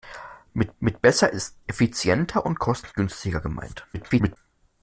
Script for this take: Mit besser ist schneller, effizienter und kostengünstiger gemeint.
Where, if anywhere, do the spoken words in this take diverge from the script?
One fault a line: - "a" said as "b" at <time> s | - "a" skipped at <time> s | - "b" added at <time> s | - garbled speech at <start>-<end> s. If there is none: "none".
- "mit" added at 0.8 s
- "schneller" skipped at 1.6 s
- garbled speech at 3.9-4.4 s